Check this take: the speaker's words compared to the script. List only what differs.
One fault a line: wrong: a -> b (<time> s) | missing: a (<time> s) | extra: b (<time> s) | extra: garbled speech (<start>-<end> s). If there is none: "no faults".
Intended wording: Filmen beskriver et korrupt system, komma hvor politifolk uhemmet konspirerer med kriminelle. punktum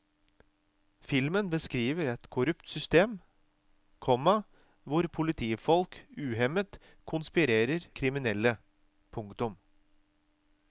missing: med (7.9 s)